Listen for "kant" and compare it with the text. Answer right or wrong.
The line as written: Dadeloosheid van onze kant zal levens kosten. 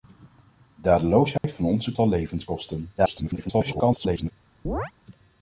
wrong